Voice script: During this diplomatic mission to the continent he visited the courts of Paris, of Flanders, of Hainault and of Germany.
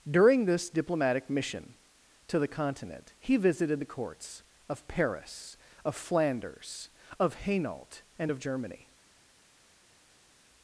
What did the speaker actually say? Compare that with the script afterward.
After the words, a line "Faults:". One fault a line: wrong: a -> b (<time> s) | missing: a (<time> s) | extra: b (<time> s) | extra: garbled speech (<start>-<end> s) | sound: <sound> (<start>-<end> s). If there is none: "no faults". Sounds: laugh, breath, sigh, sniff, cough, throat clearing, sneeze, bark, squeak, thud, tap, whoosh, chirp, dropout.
During this diplomatic mission to the continent he visited the courts of Paris, of Flanders, of Hainault and of Germany.
Faults:
no faults